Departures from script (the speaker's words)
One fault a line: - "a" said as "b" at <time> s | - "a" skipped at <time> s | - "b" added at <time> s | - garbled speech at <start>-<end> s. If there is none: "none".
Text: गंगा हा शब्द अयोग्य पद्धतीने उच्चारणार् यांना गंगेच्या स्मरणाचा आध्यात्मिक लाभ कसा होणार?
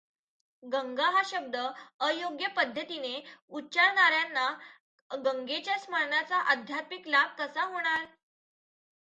none